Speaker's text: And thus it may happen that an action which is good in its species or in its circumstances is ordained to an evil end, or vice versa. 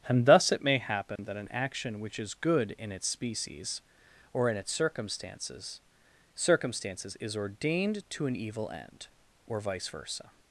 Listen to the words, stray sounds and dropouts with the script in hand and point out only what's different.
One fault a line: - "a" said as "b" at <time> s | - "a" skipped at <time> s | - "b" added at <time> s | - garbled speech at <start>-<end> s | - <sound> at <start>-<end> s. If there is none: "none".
- dropout at 1.2-1.2 s
- "circumstances" added at 6.4 s